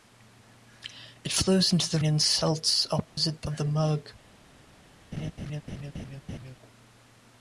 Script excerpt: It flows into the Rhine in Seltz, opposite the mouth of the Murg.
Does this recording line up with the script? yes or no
no